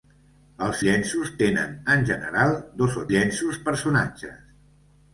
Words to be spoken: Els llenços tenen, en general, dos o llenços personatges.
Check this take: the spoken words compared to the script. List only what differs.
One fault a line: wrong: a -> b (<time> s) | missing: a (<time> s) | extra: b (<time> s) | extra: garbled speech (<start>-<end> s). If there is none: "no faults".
no faults